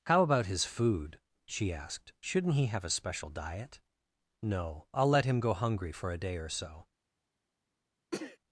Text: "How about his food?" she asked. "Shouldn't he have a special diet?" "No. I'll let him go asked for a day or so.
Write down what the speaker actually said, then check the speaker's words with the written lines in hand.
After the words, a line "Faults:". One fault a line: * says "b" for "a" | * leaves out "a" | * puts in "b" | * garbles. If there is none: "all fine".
"How about his food?" she asked. "Shouldn't he have a special diet?" "No. I'll let him go hungry for a day or so.
Faults:
* says "hungry" for "asked"